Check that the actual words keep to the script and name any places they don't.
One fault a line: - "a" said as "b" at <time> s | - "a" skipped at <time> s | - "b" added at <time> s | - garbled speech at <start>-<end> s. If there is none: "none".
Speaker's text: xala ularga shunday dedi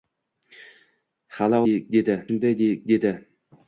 - "ularga" said as "dedi" at 1.7 s